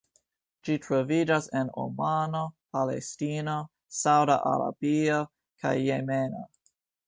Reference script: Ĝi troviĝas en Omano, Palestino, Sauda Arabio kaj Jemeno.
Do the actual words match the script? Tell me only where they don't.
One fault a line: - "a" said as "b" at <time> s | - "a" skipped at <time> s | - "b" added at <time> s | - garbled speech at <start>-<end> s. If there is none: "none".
none